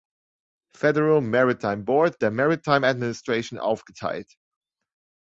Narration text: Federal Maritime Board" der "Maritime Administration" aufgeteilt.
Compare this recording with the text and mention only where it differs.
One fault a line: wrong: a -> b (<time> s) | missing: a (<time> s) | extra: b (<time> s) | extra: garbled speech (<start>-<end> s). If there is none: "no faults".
no faults